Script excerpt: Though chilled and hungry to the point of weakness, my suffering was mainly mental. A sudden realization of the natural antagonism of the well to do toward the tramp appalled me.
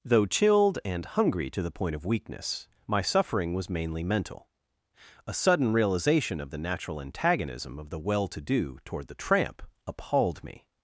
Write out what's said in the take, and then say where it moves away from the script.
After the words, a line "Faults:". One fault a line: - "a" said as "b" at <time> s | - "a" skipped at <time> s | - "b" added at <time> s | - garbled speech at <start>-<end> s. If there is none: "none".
Though chilled and hungry to the point of weakness, my suffering was mainly mental. A sudden realization of the natural antagonism of the well to do toward the tramp appalled me.
Faults:
none